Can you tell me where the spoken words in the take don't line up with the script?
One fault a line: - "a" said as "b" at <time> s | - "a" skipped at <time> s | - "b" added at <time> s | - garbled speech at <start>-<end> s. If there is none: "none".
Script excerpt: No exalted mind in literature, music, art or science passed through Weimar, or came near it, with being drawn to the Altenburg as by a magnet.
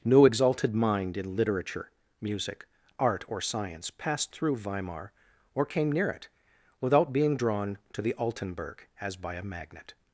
- "with" said as "without" at 6.8 s